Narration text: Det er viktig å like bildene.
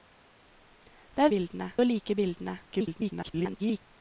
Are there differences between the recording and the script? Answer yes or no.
yes